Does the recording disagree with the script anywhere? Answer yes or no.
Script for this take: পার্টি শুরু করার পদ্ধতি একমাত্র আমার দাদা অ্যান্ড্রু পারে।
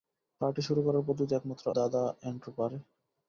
yes